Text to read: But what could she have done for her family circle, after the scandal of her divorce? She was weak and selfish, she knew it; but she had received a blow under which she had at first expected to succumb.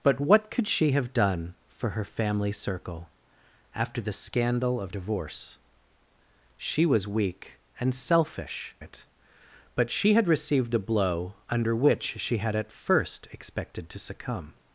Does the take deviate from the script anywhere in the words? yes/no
yes